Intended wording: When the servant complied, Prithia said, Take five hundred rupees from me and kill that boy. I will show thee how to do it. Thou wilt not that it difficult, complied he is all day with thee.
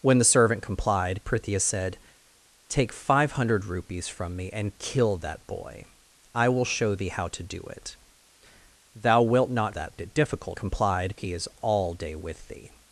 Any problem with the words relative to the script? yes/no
no